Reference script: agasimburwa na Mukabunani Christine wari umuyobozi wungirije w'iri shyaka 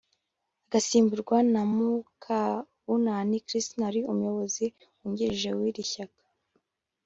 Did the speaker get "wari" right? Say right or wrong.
right